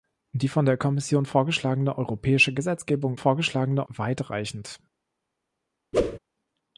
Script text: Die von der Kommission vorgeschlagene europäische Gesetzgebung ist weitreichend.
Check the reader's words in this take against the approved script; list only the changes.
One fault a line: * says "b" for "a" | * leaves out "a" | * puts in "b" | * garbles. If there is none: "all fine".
* says "vorgeschlagene" for "ist"